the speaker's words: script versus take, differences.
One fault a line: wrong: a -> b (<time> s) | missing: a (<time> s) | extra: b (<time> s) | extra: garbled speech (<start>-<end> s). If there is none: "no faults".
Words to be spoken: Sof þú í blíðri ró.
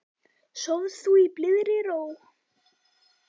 no faults